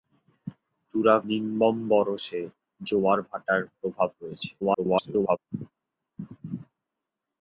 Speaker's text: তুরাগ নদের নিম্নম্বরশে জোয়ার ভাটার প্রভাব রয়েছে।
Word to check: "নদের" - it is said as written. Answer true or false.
false